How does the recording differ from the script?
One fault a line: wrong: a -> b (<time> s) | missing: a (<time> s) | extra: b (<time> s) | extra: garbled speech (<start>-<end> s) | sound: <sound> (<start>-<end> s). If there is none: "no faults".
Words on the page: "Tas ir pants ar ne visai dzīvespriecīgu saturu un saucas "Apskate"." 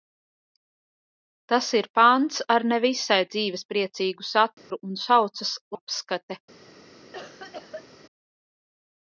sound: dropout (4.6-4.7 s)
sound: cough (7.1-7.9 s)